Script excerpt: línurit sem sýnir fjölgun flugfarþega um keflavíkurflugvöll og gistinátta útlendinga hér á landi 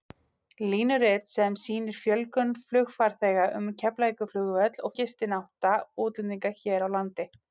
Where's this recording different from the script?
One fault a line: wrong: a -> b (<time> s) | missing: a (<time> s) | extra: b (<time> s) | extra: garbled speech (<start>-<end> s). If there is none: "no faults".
no faults